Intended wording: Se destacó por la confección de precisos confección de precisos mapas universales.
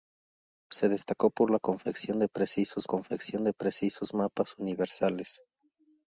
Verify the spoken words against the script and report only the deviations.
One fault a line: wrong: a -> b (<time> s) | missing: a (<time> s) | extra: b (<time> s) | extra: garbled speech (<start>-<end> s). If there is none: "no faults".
no faults